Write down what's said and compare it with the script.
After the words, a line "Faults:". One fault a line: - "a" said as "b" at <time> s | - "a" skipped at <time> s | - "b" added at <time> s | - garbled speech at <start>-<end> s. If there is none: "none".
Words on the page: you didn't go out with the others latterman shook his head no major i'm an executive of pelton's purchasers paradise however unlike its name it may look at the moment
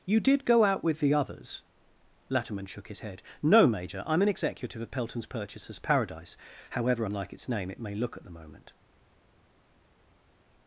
you did go out with the others latterman shook his head no major i'm an executive of pelton's purchasers paradise however unlike its name it may look at the moment
Faults:
- "didn't" said as "did" at 0.2 s